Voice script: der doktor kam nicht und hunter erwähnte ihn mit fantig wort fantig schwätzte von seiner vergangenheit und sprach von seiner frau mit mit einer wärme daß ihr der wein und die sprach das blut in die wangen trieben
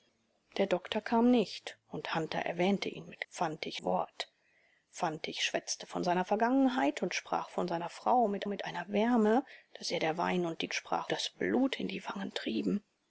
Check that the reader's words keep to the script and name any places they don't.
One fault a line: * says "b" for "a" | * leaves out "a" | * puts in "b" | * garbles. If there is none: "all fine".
all fine